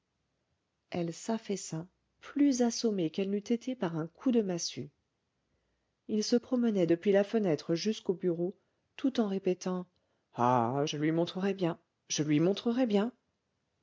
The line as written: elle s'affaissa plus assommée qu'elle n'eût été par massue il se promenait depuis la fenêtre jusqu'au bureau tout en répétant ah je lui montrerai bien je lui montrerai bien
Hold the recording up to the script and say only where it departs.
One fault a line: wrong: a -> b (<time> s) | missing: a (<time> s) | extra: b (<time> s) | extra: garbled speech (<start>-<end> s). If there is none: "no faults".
extra: un coup de (4.0 s)